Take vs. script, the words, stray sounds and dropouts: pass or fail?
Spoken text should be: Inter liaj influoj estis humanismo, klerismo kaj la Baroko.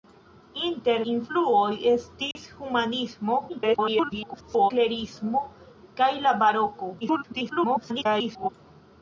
fail